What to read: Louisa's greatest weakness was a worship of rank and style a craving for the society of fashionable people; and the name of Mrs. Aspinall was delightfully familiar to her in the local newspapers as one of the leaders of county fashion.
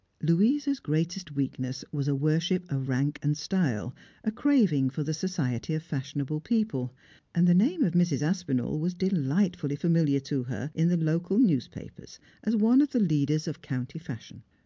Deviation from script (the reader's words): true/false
false